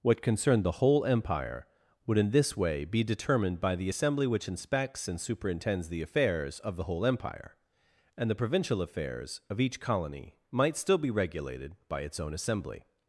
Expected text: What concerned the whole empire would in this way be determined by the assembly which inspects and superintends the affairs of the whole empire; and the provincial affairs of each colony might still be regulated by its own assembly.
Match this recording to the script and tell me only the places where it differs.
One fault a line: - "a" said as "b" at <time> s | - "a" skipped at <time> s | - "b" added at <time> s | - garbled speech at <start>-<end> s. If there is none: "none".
none